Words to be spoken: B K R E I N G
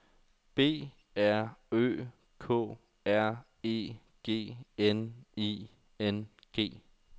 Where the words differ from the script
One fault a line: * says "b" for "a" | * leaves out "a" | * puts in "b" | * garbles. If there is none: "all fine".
* puts in "R Ø"
* puts in "G N"